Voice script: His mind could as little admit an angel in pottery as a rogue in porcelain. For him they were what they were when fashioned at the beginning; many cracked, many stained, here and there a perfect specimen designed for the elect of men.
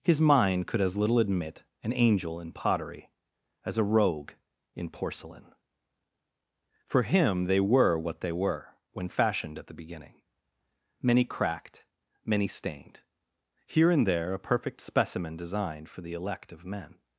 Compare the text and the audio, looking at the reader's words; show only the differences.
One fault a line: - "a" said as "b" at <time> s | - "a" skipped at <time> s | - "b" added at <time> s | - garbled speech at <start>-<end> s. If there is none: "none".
none